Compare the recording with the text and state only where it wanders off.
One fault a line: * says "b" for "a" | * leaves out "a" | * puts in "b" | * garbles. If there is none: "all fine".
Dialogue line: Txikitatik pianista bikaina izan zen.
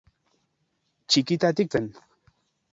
* leaves out "pianista bikaina izan"